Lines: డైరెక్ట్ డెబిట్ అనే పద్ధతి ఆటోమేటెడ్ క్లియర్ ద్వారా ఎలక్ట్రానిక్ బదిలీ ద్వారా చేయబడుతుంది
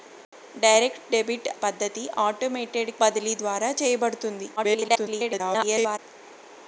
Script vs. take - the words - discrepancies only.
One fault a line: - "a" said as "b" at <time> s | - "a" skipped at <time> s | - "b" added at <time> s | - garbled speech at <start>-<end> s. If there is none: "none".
- "అనే" skipped at 1.5 s
- "క్లియర్ ద్వారా ఎలక్ట్రానిక్" skipped at 2.9 s
- garbled speech at 4.6-6.0 s